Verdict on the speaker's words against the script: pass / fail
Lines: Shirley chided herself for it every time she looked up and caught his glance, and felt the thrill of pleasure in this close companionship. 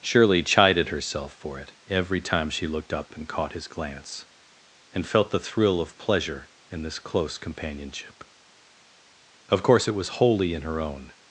fail